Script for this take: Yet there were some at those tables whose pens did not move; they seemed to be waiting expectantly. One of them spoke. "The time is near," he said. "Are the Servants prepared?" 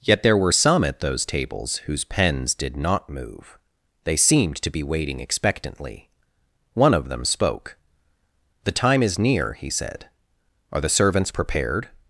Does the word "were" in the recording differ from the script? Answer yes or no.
no